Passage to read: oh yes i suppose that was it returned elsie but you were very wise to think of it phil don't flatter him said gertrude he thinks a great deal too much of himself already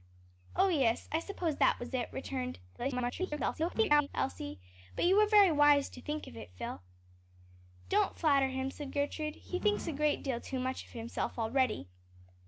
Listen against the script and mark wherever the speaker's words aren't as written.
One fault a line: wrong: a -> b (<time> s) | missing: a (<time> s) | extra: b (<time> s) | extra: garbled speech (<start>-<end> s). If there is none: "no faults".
extra: garbled speech (2.8-4.1 s)